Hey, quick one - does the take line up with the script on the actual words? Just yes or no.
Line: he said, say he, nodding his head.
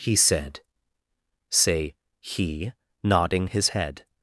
yes